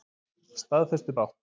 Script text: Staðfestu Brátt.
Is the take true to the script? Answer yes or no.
yes